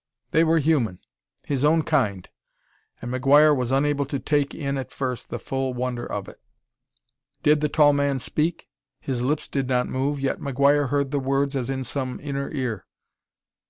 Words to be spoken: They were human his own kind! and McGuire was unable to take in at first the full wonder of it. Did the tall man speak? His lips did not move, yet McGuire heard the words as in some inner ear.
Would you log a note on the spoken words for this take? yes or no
no